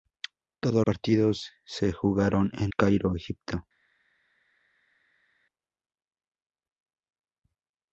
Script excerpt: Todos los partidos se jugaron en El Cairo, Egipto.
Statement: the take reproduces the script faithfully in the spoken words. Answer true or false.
false